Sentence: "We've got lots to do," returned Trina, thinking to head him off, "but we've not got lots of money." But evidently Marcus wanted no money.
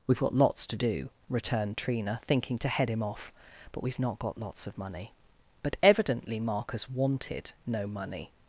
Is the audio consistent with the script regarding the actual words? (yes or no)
yes